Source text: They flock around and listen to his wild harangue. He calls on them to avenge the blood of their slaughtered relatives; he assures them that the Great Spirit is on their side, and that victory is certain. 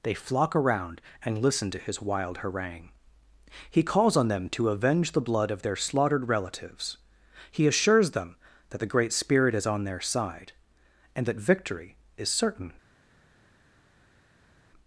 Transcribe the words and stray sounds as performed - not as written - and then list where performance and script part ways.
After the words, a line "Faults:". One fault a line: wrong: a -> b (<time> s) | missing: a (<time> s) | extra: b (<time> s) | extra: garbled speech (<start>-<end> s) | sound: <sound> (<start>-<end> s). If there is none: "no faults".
They flock around and listen to his wild harangue. He calls on them to avenge the blood of their slaughtered relatives; he assures them that the Great Spirit is on their side, and that victory is certain.
Faults:
no faults